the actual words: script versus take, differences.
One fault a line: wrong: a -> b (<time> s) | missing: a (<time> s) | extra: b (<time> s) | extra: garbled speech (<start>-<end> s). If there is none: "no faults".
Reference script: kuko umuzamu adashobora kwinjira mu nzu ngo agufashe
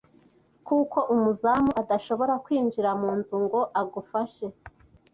no faults